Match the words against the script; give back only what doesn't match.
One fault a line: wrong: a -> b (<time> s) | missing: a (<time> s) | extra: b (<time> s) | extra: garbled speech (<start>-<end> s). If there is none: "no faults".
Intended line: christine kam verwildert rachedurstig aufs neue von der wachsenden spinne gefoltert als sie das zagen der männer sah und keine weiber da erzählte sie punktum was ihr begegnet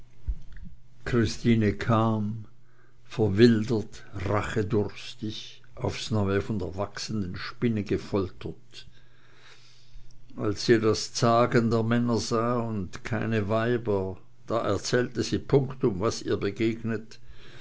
no faults